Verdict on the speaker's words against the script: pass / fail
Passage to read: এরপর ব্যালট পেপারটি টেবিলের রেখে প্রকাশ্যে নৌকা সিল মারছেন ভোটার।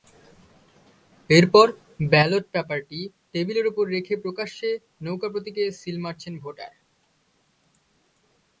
fail